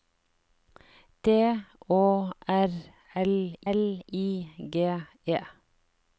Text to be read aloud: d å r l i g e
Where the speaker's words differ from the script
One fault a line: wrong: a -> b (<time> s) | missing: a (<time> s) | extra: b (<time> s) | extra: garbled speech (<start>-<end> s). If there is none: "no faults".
extra: l (3.7 s)